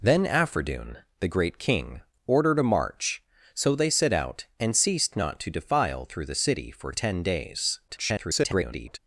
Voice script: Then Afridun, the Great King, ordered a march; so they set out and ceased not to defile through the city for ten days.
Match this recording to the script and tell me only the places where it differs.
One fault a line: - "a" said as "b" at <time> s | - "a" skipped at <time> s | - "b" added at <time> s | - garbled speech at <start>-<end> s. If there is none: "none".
- garbled speech at 7.9-9.0 s